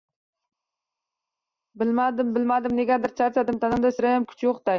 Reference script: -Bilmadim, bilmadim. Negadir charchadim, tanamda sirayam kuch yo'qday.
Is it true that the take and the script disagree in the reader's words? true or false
false